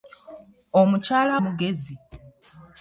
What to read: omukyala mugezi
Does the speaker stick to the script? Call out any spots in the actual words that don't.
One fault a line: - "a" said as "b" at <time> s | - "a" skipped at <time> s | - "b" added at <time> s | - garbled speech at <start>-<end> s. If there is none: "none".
none